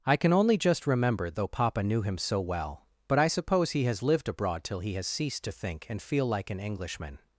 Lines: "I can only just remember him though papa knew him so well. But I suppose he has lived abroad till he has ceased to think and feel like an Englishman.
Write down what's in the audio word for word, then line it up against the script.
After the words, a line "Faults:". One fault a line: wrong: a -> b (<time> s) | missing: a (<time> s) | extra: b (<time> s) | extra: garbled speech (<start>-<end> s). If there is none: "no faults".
"I can only just remember though papa knew him so well. But I suppose he has lived abroad till he has ceased to think and feel like an Englishman.
Faults:
missing: him (1.3 s)